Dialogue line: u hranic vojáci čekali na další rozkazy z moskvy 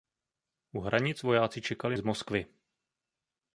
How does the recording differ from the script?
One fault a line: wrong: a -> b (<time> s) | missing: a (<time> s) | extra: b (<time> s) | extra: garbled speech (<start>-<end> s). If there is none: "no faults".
missing: na další rozkazy (2.0 s)